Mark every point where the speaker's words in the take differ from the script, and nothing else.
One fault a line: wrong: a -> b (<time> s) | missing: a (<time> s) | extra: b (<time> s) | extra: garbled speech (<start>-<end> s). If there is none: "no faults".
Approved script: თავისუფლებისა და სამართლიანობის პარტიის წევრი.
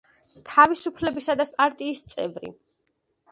missing: სამართლიანობის (1.5 s)